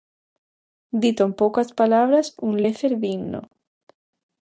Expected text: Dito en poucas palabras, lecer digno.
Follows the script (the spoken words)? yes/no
no